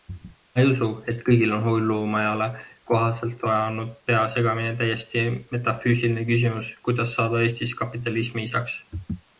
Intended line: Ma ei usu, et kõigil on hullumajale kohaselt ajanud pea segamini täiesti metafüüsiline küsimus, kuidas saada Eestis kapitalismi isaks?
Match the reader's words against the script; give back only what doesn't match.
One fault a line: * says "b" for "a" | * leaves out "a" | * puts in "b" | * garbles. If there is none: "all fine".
all fine